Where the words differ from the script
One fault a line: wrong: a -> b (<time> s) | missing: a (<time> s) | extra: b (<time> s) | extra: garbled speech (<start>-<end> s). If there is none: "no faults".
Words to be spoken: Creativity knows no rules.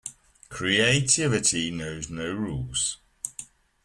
no faults